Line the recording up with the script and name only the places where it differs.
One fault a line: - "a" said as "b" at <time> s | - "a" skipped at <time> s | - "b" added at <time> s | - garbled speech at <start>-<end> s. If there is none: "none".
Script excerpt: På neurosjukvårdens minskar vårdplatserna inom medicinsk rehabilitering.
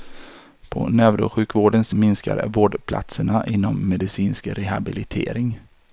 none